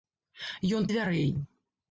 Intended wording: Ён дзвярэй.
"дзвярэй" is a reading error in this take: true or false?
false